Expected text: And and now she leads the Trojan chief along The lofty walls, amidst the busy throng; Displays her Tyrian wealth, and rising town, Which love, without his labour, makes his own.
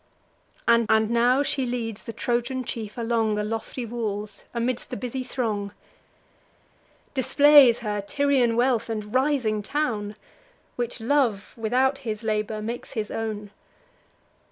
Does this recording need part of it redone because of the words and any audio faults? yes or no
no